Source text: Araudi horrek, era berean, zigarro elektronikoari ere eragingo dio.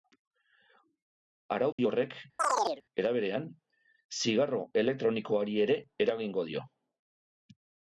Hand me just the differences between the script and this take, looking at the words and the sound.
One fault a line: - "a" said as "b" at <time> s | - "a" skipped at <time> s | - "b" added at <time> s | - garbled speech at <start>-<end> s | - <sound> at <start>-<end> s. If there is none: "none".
- dropout at 1.7-1.8 s
- chirp at 2.4-2.8 s